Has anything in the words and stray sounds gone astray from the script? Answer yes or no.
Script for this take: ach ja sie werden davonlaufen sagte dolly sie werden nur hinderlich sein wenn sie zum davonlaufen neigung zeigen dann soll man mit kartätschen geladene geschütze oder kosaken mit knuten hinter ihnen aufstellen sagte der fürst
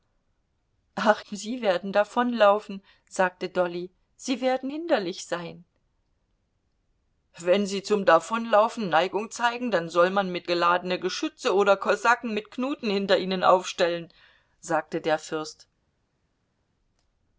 yes